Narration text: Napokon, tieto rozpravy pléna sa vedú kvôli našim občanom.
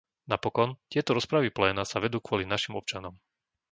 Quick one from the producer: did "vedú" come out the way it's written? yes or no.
yes